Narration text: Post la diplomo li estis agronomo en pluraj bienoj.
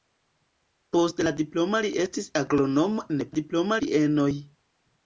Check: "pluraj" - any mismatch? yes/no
yes